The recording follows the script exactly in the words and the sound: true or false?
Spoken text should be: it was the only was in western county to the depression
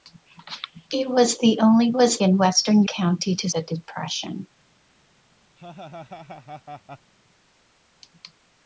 false